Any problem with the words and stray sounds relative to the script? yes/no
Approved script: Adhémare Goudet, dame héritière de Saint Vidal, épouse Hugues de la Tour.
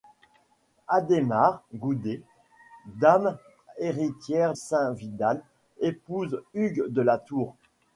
yes